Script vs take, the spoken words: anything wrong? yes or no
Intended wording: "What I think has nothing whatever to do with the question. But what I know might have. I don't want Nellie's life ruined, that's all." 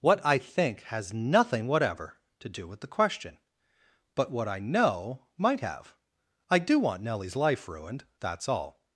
yes